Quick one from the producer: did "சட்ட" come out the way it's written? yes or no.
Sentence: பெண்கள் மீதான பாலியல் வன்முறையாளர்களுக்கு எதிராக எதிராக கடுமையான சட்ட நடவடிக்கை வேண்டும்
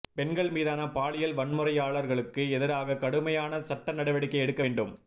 yes